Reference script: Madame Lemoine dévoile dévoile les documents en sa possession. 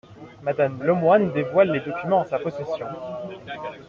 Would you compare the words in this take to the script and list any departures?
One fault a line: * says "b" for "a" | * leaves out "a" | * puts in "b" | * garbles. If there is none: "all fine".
* leaves out "dévoile"